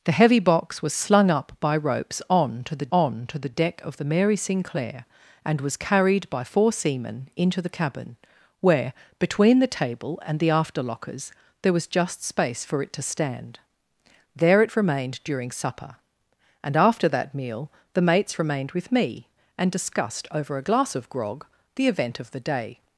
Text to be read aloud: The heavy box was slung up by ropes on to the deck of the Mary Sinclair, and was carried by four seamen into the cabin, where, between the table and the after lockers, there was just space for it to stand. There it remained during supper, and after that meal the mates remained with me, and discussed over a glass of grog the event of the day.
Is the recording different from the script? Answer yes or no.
yes